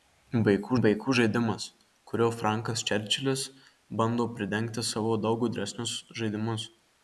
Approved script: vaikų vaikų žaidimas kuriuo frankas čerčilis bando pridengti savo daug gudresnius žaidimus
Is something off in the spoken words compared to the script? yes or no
no